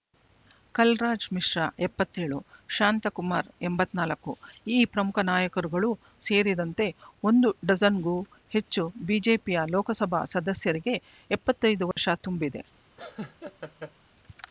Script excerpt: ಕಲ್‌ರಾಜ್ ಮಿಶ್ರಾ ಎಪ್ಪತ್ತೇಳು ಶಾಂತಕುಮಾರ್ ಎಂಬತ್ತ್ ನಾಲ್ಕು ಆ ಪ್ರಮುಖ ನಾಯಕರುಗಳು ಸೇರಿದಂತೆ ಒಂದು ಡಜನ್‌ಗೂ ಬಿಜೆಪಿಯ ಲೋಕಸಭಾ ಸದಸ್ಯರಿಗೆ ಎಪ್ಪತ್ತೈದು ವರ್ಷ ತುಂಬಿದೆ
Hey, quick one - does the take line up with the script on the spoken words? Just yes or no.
no